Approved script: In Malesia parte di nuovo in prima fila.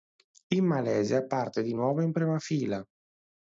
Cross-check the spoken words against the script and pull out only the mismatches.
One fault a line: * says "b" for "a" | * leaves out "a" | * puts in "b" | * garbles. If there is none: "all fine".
all fine